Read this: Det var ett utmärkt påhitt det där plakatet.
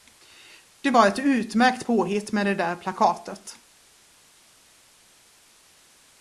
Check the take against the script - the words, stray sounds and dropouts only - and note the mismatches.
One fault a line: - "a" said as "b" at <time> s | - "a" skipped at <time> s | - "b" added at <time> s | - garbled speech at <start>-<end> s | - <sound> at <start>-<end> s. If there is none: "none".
- "med" added at 2.3 s